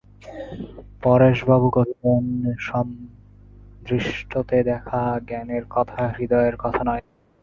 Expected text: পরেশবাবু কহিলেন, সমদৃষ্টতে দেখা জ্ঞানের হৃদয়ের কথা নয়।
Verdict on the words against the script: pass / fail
fail